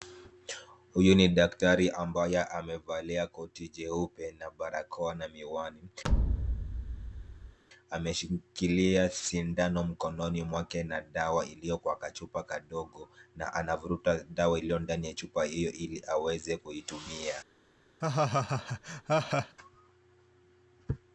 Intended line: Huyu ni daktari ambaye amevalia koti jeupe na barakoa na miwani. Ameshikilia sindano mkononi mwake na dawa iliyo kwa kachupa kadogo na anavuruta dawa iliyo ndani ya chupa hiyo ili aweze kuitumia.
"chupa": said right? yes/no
yes